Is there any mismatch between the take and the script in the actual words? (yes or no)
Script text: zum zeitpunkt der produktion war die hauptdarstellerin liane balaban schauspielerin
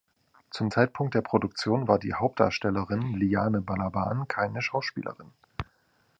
yes